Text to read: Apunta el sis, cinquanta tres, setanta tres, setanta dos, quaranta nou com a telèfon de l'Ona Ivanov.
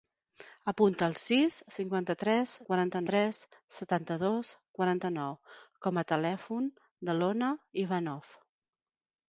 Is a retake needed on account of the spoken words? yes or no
yes